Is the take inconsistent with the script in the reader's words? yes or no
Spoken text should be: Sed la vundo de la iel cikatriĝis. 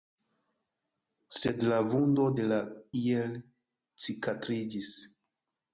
no